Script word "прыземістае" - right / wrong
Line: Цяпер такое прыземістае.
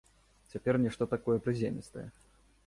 right